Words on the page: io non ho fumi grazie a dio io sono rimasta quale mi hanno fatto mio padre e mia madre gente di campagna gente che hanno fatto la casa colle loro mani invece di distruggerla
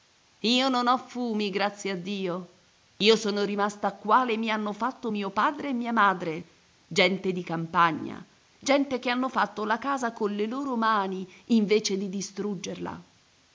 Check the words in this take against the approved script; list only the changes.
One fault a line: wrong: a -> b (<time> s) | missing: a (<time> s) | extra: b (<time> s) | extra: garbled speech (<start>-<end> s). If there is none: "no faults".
no faults